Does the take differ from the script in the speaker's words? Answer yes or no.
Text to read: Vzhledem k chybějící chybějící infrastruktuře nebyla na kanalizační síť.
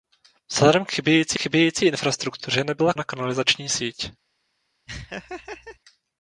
no